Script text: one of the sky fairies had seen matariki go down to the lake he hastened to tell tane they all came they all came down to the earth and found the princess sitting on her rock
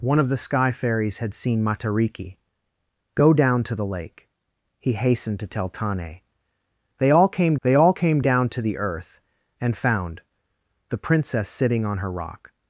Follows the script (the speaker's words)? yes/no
yes